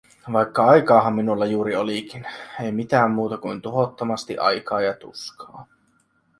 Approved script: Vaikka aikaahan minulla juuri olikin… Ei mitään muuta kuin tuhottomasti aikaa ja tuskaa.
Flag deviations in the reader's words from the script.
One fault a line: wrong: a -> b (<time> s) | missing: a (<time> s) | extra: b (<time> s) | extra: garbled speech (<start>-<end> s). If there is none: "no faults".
no faults